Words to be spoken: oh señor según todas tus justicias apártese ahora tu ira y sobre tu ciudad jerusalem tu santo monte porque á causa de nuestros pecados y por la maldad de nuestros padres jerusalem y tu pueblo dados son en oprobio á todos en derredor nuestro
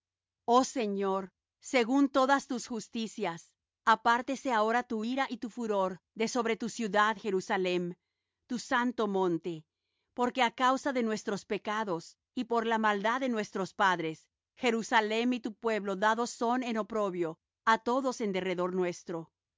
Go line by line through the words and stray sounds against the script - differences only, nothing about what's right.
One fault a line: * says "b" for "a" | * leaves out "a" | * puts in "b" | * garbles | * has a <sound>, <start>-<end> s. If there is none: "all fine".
* puts in "tu furor de"